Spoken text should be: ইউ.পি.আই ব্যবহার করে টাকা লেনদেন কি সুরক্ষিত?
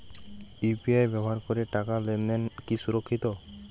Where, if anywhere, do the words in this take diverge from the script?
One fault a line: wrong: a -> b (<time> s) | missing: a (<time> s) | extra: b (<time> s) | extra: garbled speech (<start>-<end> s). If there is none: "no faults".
no faults